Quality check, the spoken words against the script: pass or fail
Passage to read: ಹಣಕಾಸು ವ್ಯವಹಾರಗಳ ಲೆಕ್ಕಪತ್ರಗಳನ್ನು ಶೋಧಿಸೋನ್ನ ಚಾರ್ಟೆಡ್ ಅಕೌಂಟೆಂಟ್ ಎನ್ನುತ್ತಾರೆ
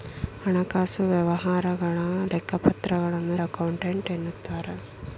fail